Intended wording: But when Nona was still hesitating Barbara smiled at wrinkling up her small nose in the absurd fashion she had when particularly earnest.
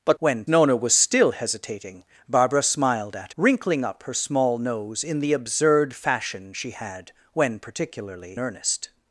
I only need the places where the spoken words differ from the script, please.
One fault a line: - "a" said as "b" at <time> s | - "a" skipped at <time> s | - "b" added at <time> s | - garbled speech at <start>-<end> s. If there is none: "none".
none